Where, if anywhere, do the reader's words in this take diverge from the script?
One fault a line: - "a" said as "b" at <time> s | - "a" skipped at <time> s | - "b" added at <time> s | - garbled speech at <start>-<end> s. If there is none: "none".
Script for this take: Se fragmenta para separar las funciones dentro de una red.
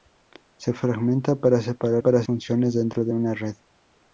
- "las" said as "para" at 2.0 s